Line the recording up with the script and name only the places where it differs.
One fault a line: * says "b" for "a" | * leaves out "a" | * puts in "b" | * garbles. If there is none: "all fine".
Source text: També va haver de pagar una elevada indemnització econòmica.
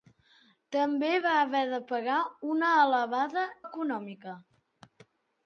* leaves out "indemnització"